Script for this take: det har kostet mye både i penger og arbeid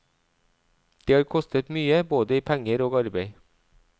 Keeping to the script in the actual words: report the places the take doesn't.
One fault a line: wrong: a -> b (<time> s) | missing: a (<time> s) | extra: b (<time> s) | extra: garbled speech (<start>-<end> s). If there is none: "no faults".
no faults